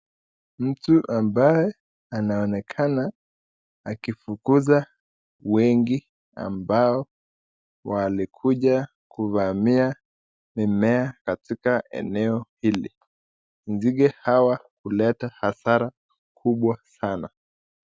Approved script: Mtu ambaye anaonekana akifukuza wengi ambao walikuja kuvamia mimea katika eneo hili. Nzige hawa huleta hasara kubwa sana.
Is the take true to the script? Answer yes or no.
yes